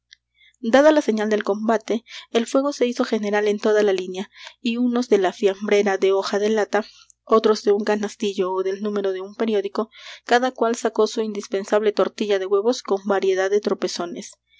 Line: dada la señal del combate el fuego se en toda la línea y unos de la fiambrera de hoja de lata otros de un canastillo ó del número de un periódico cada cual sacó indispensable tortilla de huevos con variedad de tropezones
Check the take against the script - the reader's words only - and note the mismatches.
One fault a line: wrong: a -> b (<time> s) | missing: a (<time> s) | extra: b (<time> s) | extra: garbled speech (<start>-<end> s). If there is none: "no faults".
extra: hizo general (2.9 s)
extra: su (11.1 s)